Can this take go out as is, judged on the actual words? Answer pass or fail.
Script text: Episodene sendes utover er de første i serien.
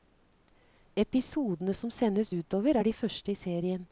fail